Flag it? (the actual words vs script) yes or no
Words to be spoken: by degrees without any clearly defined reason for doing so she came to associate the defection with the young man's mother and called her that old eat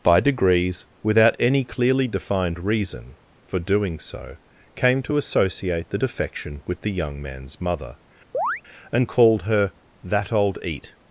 yes